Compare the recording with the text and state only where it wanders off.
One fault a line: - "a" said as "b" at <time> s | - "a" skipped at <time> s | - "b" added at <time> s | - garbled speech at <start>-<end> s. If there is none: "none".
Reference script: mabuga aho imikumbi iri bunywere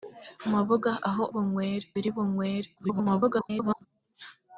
- "imikumbi" said as "bunywere" at 1.3 s
- garbled speech at 2.8-3.9 s